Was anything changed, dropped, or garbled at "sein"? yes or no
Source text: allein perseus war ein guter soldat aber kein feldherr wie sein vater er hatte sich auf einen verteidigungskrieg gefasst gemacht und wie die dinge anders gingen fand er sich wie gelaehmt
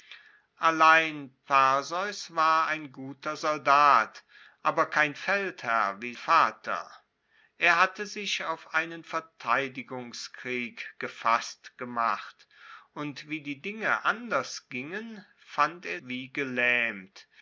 yes